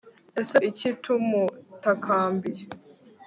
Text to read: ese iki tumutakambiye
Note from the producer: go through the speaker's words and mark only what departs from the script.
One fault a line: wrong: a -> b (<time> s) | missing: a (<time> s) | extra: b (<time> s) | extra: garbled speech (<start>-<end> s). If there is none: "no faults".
no faults